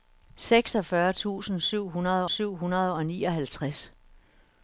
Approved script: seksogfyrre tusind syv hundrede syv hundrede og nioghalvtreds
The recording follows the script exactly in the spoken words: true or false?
true